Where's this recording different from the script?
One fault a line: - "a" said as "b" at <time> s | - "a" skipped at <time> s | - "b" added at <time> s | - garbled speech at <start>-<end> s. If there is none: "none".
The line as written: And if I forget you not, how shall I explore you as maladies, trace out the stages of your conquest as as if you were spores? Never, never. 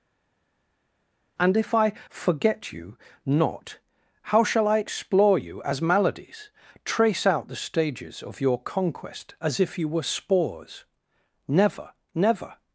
- "as" skipped at 9.6 s